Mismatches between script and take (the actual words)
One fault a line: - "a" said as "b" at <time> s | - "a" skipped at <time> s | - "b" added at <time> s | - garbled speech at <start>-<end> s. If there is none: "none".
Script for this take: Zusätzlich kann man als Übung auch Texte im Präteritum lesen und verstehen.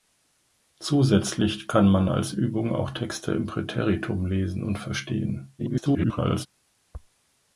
- garbled speech at 5.6-6.5 s